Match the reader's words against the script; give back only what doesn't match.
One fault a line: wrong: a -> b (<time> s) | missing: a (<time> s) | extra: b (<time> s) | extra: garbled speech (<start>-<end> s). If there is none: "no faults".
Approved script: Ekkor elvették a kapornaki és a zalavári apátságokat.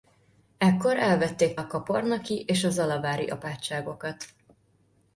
no faults